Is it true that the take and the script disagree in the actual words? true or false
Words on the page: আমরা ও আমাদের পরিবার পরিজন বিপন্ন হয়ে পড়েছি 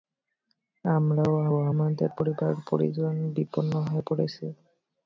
true